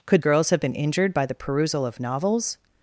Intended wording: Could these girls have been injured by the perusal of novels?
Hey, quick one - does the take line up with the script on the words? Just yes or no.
no